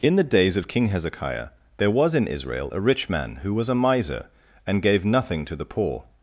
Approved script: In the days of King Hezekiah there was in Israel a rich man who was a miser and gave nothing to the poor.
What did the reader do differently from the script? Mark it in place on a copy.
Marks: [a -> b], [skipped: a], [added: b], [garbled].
In the days of King Hezekiah there was in Israel a rich man who was a miser and gave nothing to the poor.